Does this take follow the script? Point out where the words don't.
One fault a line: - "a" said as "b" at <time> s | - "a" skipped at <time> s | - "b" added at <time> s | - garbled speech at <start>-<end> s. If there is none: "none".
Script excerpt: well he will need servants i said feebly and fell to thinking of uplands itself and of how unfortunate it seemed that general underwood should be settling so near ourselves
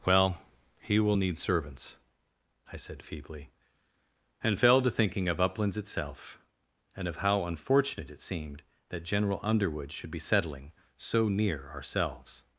none